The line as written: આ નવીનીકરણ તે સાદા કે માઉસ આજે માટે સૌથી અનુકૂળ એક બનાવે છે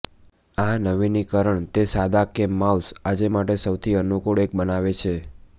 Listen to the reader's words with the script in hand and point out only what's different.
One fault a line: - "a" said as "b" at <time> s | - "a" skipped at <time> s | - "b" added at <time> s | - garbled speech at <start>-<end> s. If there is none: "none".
none